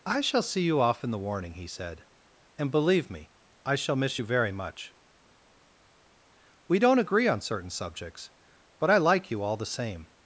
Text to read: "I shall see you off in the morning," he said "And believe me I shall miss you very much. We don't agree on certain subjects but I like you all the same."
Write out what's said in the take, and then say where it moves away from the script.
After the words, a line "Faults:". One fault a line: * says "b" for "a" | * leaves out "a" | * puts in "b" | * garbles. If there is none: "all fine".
"I shall see you off in the warning," he said "And believe me I shall miss you very much. We don't agree on certain subjects but I like you all the same."
Faults:
* says "warning" for "morning"